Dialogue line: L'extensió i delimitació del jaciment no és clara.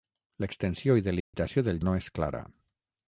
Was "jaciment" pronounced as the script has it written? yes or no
no